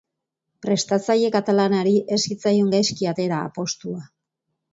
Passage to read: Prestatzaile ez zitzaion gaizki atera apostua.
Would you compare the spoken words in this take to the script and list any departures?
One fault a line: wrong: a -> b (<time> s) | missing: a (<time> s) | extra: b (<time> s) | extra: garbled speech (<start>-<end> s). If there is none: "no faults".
extra: katalanari (1.3 s)